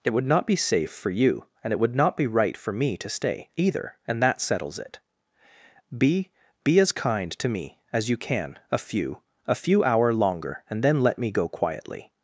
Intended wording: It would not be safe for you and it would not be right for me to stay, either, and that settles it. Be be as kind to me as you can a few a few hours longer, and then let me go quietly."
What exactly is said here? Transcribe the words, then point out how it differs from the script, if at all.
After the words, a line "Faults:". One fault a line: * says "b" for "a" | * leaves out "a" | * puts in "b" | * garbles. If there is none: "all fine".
It would not be safe for you and it would not be right for me to stay, either, and that settles it. Be be as kind to me as you can a few a few hour longer, and then let me go quietly."
Faults:
* says "hour" for "hours"